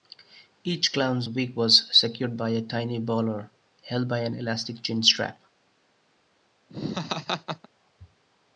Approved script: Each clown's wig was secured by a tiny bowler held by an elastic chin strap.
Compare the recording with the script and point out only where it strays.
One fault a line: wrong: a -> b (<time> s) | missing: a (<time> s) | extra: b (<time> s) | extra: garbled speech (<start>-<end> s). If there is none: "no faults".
no faults